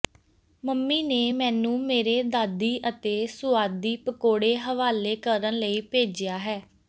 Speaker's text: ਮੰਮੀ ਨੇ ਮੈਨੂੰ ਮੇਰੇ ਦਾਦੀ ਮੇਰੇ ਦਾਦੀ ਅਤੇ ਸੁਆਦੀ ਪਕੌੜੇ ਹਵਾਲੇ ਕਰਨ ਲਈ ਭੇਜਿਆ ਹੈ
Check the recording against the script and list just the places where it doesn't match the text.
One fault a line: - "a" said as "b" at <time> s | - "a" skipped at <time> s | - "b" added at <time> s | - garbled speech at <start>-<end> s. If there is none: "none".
- "ਮੇਰੇ ਦਾਦੀ" skipped at 2.8 s